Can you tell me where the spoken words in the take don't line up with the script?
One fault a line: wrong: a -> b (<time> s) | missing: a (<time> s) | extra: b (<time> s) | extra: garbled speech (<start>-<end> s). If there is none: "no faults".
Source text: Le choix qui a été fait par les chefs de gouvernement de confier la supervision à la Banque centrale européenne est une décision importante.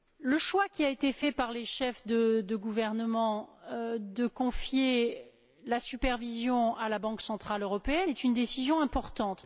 no faults